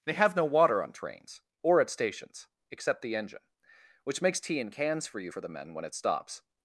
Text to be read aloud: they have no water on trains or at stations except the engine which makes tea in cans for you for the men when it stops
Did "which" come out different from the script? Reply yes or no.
no